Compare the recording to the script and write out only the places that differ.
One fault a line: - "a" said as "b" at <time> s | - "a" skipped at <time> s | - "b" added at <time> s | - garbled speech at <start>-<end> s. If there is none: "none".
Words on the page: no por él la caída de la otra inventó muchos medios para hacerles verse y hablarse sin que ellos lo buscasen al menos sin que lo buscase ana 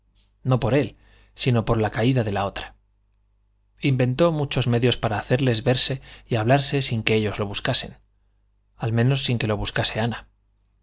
- "sino por" added at 1.4 s